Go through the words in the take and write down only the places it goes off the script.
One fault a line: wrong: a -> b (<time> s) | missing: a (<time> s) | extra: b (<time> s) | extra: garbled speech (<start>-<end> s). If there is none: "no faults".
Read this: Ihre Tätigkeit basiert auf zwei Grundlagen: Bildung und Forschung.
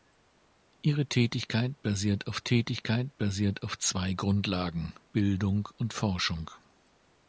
extra: Tätigkeit basiert auf (2.4 s)